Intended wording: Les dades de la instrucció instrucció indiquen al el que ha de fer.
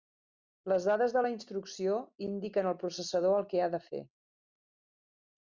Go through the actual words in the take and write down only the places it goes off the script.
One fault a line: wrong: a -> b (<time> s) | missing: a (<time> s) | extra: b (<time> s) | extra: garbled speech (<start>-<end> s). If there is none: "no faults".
missing: instrucció (2.0 s)
extra: processador (2.9 s)